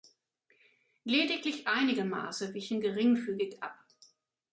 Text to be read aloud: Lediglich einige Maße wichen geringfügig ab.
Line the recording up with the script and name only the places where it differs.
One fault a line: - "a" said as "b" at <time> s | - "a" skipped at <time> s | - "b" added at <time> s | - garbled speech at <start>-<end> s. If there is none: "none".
none